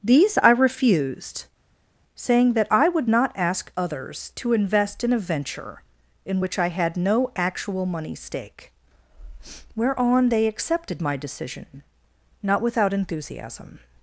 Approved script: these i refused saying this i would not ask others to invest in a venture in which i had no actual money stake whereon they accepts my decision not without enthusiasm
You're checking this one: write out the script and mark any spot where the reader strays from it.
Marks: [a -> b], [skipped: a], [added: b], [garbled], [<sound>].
these i refused saying [this -> that] i would not ask others to invest in a venture in which i had no actual money stake whereon they [accepts -> accepted] my decision not without enthusiasm